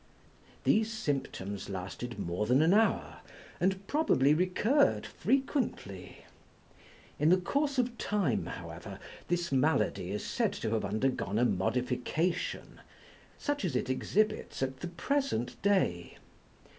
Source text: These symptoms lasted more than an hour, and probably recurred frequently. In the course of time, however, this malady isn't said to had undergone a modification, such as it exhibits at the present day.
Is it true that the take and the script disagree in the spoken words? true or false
true